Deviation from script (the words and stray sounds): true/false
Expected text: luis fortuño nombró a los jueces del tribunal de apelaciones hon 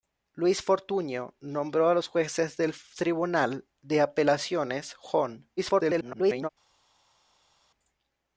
true